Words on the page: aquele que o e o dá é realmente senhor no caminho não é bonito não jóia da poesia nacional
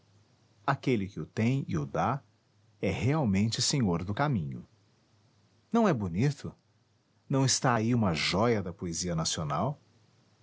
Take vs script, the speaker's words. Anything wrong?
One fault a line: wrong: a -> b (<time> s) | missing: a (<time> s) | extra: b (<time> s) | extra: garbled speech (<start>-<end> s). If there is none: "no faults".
extra: tem (1.3 s)
wrong: no -> do (4.0 s)
extra: está aí uma (7.4 s)